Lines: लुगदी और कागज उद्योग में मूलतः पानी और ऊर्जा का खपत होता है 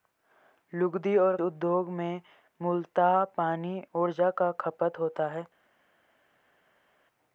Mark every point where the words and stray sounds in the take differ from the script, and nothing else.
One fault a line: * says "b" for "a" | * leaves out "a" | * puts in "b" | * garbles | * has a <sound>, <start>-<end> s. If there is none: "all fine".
* leaves out "कागज"
* leaves out "और"